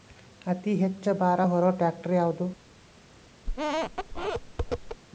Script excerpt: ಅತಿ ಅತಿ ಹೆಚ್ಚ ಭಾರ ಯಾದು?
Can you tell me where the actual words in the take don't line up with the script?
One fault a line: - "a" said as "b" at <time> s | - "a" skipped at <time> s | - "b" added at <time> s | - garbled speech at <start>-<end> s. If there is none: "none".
- "ಅತಿ" skipped at 0.7 s
- "ಹೊರು ಟ್ರ್ಯಾಕ್ಟರ್" added at 1.5 s